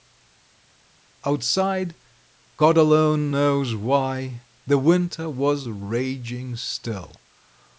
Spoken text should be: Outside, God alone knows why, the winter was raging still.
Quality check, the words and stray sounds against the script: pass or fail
pass